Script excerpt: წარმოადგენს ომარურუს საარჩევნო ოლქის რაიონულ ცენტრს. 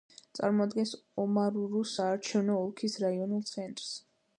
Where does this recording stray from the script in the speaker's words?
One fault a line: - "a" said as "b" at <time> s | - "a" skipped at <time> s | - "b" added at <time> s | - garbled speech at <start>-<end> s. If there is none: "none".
none